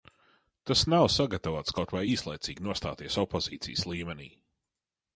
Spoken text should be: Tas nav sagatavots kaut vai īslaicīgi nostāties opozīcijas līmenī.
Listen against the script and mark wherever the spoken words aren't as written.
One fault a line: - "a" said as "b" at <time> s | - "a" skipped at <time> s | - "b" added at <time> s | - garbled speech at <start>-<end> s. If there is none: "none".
none